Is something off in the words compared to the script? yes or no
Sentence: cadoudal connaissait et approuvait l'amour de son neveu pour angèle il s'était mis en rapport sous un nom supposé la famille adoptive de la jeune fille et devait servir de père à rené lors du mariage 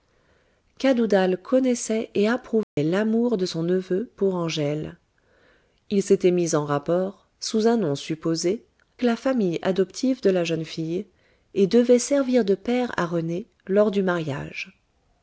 no